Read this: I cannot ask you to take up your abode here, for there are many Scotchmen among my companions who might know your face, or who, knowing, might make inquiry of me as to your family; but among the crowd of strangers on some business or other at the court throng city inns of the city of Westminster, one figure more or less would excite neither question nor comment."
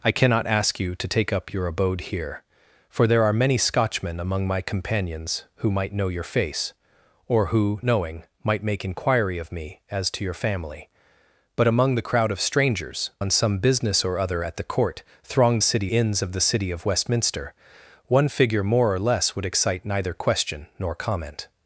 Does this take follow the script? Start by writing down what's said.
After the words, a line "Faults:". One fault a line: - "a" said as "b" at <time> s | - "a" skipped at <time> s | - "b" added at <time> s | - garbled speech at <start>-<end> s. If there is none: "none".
I cannot ask you to take up your abode here, for there are many Scotchmen among my companions who might know your face, or who, knowing, might make inquiry of me as to your family; but among the crowd of strangers on some business or other at the court throng city inns of the city of Westminster, one figure more or less would excite neither question nor comment."
Faults:
none